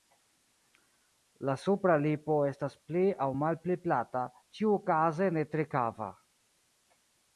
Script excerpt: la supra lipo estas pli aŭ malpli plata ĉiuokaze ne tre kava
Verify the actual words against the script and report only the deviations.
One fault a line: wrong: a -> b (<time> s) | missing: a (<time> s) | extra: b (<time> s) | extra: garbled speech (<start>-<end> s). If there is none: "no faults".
no faults